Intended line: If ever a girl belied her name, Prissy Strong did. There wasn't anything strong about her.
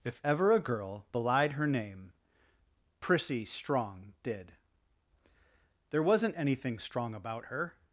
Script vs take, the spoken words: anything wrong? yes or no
no